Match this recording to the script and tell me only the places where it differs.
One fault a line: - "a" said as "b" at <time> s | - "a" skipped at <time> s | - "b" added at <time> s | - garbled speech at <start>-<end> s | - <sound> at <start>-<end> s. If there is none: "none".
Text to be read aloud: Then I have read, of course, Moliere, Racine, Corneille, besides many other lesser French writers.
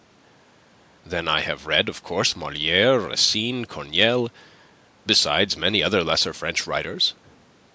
none